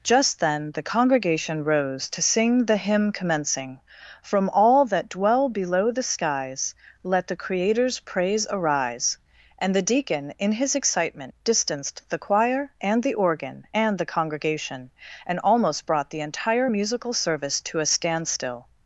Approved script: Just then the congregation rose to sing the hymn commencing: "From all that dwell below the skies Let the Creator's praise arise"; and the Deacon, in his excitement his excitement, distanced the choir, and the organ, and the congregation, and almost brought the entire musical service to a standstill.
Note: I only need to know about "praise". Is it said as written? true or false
true